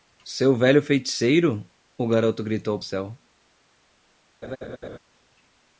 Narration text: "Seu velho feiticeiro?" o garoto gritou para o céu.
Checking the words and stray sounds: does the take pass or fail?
fail